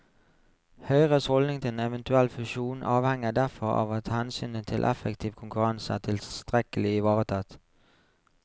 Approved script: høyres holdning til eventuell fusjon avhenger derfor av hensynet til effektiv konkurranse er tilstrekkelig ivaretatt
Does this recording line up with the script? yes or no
no